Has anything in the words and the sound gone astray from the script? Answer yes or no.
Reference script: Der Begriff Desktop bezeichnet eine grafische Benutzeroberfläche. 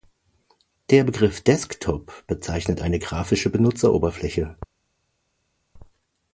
no